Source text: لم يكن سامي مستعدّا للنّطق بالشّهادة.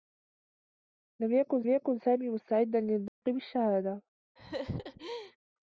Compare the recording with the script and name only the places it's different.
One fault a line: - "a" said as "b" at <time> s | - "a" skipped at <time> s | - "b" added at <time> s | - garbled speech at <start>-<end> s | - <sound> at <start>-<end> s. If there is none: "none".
- "يكن" added at 1.7 s
- dropout at 3.1-3.2 s
- laugh at 4.4-5.4 s